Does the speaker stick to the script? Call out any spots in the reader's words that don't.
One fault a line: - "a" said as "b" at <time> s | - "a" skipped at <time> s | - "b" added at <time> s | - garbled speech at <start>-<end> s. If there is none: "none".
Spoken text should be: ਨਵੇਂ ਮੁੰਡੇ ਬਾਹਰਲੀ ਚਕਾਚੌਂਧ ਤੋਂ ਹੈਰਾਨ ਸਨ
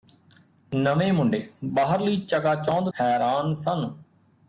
- "ਤੋਂ" skipped at 2.9 s